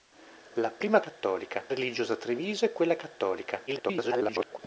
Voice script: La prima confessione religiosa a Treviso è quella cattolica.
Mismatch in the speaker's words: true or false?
true